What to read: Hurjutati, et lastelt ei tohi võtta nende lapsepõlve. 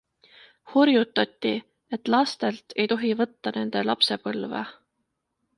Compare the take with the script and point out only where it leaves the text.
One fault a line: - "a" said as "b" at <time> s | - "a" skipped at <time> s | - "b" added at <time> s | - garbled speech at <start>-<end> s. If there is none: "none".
none